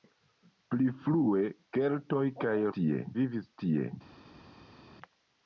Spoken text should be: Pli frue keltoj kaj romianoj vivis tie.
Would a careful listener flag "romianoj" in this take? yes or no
yes